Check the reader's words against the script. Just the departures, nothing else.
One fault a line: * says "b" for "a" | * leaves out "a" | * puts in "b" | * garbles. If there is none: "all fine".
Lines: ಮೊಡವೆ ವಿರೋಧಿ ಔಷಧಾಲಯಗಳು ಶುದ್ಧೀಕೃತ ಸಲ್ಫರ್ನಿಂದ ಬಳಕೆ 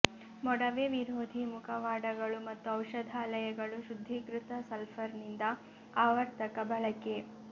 * puts in "ಮುಖವಾಡಗಳು ಮತ್ತು"
* puts in "ಆವರ್ತಕ"